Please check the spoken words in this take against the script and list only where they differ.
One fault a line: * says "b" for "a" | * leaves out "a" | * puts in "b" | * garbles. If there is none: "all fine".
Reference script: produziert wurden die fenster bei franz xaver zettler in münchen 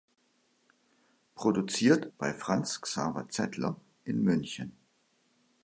* leaves out "wurden die fenster"